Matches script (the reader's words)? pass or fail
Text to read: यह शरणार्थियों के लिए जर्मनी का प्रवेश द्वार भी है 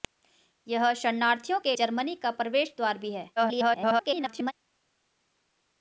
fail